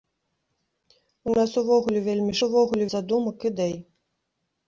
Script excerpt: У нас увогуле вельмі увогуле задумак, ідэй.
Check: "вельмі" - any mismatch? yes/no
no